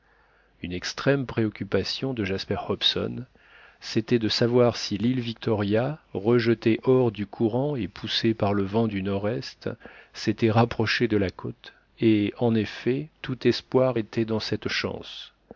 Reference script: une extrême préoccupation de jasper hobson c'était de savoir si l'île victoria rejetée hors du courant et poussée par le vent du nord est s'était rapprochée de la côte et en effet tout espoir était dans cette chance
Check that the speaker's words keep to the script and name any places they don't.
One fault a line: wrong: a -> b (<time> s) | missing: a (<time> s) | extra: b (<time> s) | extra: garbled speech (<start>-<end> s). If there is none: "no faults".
no faults